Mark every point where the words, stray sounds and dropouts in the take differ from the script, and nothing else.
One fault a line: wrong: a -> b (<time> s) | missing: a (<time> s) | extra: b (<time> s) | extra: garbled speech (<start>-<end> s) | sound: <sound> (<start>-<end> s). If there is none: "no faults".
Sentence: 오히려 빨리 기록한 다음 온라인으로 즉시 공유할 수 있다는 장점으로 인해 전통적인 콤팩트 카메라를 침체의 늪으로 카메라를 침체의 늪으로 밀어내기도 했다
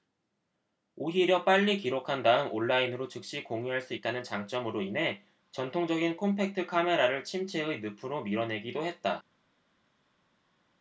missing: 카메라를 침체의 늪으로 (8.2 s)